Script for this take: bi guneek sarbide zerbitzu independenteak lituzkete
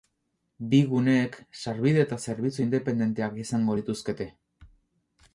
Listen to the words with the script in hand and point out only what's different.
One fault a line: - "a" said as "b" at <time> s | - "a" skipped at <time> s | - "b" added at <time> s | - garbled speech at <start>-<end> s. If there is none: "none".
- "eta" added at 2.0 s
- "izango" added at 3.5 s